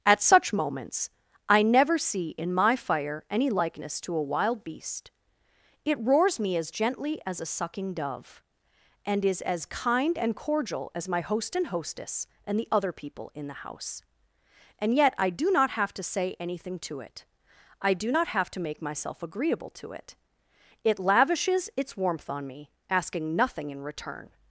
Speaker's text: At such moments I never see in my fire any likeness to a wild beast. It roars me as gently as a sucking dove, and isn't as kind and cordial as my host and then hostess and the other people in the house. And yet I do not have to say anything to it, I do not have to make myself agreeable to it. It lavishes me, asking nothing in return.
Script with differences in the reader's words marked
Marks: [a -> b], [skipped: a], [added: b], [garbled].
At such moments I never see in my fire any likeness to a wild beast. It roars me as gently as a sucking dove, and [isn't -> is] as kind and cordial as my host and [skipped: then] hostess and the other people in the house. And yet I do not have to say anything to it, I do not have to make myself agreeable to it. It lavishes [added: its warmth on] me, asking nothing in return.